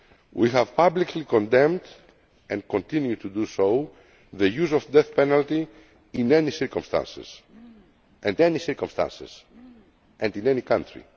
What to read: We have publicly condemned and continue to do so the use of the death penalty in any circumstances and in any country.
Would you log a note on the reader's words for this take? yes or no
yes